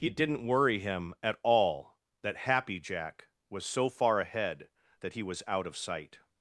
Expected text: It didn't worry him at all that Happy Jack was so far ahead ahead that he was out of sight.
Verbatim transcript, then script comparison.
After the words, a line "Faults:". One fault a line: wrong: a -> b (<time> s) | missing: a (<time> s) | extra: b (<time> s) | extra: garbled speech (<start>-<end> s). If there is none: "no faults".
It didn't worry him at all that Happy Jack was so far ahead that he was out of sight.
Faults:
missing: ahead (4.7 s)